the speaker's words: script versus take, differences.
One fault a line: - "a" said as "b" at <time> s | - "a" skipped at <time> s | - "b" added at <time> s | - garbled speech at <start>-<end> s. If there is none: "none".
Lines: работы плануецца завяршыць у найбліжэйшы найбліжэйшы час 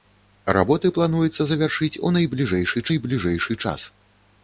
none